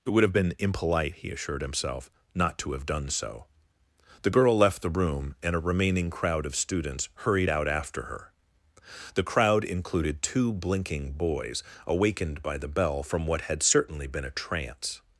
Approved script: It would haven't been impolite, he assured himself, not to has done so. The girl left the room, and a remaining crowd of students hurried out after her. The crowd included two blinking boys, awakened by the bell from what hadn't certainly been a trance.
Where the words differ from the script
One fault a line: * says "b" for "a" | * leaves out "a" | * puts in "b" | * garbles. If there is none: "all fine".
* says "have" for "haven't"
* says "have" for "has"
* says "had" for "hadn't"